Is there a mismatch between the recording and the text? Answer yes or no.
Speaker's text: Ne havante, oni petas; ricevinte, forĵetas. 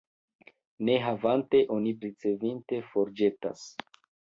yes